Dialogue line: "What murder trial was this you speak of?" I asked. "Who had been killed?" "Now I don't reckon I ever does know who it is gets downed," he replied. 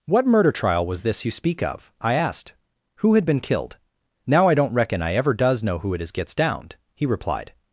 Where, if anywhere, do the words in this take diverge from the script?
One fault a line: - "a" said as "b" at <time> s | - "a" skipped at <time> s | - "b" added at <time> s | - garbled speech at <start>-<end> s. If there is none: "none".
none